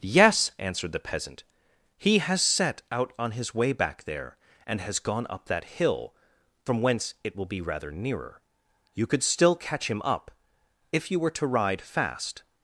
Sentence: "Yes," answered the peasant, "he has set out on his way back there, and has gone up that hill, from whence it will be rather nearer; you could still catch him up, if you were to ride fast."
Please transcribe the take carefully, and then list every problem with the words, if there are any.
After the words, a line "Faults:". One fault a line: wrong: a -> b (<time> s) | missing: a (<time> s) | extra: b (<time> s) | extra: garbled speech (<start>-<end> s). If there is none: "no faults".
"Yes," answered the peasant, "he has set out on his way back there, and has gone up that hill, from whence it will be rather nearer; you could still catch him up, if you were to ride fast."
Faults:
no faults